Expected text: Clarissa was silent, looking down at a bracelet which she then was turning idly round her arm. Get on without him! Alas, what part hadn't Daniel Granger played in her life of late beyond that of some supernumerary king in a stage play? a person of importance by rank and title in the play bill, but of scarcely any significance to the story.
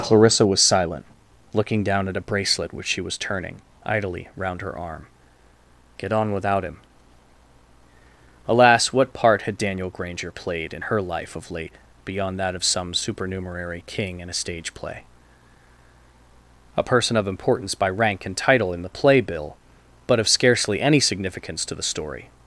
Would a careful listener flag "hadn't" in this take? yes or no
yes